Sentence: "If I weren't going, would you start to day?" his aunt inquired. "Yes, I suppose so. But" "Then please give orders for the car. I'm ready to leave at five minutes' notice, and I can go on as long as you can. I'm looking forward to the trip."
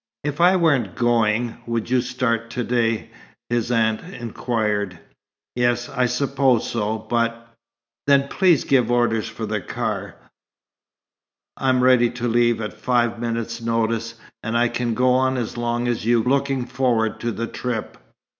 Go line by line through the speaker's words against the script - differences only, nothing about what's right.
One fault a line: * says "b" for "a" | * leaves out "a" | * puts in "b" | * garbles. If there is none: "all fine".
* leaves out "can I'm"